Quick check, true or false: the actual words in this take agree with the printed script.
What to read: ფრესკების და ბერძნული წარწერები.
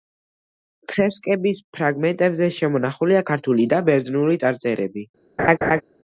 false